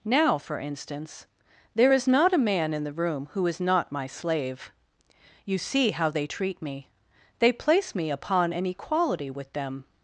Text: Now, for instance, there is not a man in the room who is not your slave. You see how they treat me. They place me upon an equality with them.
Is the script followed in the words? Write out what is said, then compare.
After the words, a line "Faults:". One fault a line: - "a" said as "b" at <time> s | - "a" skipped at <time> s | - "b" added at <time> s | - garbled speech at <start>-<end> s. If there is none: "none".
Now, for instance, there is not a man in the room who is not my slave. You see how they treat me. They place me upon an equality with them.
Faults:
- "your" said as "my" at 3.9 s